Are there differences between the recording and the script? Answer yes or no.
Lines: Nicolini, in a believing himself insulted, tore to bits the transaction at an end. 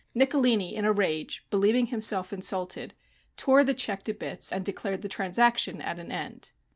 yes